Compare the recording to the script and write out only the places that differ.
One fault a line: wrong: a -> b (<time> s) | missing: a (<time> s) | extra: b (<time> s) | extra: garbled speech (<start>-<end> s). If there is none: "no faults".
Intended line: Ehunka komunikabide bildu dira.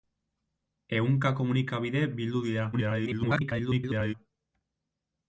extra: garbled speech (2.7-4.1 s)